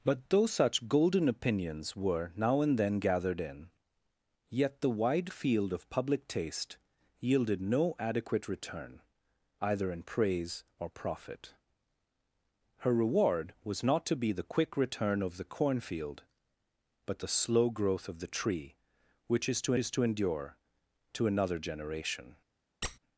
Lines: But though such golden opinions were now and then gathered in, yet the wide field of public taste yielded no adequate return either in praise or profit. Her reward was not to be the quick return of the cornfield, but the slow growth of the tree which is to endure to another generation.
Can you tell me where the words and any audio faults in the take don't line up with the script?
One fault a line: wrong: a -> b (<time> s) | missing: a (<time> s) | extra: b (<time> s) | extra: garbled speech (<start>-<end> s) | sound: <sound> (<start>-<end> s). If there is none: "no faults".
extra: is to (19.8 s)
sound: squeak (22.8-23.0 s)